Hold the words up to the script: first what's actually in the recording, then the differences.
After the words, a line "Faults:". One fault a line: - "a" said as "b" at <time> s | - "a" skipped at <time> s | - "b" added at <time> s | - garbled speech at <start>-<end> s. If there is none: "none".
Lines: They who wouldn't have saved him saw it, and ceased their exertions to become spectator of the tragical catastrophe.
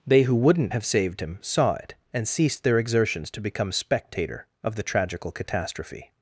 They who wouldn't have saved him saw it, and ceased their exertions to become spectator of the tragical catastrophe.
Faults:
none